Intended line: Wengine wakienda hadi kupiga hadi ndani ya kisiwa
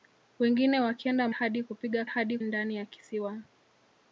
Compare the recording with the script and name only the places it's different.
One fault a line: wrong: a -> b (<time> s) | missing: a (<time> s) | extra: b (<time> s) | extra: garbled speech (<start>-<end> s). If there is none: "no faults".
no faults